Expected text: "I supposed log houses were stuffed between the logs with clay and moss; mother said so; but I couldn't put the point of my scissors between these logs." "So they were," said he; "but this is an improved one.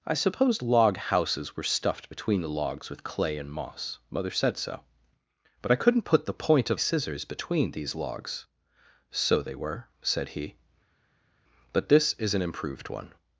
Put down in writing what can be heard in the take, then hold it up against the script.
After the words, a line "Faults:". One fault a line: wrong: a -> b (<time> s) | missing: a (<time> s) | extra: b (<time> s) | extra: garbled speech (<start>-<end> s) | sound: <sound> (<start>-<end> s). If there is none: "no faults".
"I supposed log houses were stuffed between the logs with clay and moss; mother said so; but I couldn't put the point of scissors between these logs." "So they were," said he; "but this is an improved one.
Faults:
missing: my (6.8 s)